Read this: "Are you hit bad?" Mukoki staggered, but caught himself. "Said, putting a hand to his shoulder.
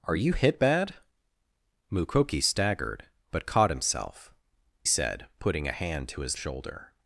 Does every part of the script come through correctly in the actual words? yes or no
yes